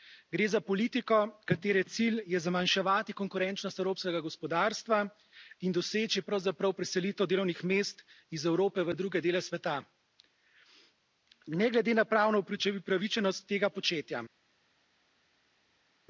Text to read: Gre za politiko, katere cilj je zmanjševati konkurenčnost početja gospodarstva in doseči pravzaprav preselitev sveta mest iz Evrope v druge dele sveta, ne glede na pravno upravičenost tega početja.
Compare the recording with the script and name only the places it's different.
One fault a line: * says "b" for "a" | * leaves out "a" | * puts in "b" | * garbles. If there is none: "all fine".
* says "evropskega" for "početja"
* says "delovnih" for "sveta"